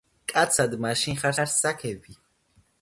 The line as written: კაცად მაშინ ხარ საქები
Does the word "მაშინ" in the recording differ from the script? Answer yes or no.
no